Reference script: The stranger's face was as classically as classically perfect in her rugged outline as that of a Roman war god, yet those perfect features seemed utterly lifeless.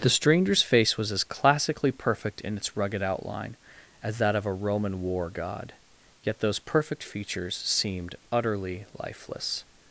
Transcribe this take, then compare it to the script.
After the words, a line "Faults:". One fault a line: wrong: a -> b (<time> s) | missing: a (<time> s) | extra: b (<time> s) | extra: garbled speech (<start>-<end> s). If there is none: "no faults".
The stranger's face was as classically perfect in its rugged outline as that of a Roman war god, yet those perfect features seemed utterly lifeless.
Faults:
missing: as classically (1.9 s)
wrong: her -> its (2.6 s)